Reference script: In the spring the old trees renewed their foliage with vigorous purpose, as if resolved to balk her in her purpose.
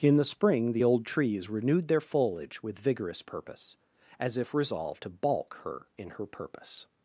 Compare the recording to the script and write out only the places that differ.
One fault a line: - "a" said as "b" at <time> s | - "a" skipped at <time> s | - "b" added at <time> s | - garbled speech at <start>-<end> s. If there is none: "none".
none